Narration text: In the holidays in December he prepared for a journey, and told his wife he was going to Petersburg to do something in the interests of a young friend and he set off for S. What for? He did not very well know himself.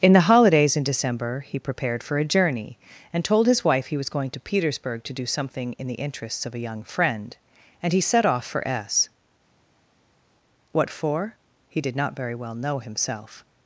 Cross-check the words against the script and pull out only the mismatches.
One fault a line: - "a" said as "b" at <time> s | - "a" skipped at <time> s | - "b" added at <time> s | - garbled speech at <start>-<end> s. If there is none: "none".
none